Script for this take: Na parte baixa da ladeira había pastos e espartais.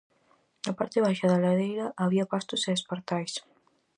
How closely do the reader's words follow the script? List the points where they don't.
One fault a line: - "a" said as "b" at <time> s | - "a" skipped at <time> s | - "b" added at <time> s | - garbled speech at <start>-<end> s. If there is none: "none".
none